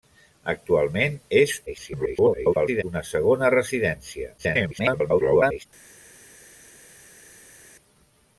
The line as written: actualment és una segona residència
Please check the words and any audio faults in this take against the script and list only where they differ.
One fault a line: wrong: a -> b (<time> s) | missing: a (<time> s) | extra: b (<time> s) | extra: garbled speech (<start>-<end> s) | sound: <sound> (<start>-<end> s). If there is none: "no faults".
extra: garbled speech (1.7-2.8 s)
extra: garbled speech (4.4-5.7 s)